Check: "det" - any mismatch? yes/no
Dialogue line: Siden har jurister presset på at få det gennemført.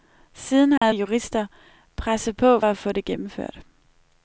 no